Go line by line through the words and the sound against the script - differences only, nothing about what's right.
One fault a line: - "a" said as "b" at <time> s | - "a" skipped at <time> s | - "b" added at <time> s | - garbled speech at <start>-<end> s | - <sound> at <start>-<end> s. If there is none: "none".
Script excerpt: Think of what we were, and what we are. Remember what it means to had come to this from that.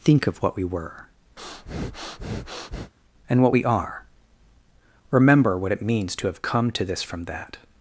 - breath at 1.4-2.9 s
- "had" said as "have" at 6.3 s